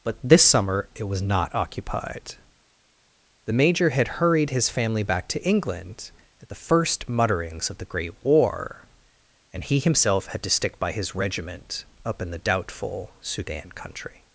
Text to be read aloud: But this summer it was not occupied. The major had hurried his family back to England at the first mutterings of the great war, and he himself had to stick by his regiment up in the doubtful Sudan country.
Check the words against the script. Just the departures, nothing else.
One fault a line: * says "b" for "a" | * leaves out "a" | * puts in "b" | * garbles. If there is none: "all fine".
all fine